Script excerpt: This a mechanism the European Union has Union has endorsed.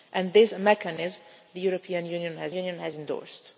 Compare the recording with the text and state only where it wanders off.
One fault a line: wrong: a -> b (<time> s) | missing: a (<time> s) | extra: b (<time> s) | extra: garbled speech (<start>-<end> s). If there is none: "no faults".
no faults